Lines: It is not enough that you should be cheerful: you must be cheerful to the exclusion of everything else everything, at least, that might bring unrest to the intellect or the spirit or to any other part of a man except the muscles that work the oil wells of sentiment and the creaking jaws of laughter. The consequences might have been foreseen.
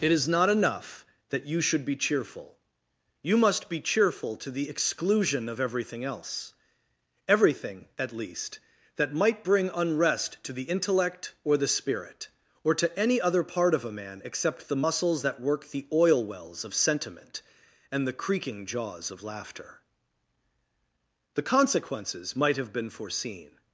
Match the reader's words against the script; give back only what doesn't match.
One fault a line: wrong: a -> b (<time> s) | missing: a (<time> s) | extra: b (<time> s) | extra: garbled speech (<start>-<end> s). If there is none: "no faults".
no faults